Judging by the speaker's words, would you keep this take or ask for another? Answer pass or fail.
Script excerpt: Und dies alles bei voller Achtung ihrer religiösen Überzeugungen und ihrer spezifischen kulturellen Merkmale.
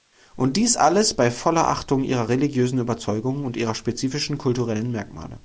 pass